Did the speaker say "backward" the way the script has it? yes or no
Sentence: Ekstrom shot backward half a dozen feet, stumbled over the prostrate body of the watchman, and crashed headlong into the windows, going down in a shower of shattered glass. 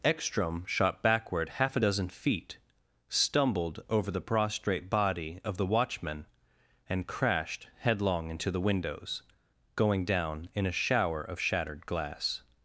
yes